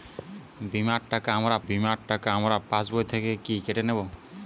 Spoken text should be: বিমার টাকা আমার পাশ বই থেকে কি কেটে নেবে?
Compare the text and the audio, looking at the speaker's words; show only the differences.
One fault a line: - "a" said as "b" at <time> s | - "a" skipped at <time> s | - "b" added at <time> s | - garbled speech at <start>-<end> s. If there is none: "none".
- "বিমার টাকা আমার" added at 1.7 s